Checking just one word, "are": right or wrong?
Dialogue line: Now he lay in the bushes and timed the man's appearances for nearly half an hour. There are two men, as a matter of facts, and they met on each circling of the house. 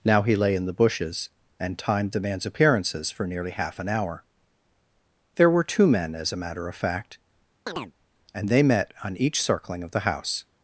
wrong